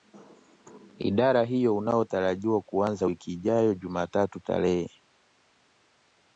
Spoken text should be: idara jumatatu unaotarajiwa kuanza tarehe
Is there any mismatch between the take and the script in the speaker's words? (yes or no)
yes